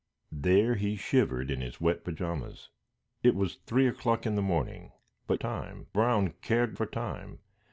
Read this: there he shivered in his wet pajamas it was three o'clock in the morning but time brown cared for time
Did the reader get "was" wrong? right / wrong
right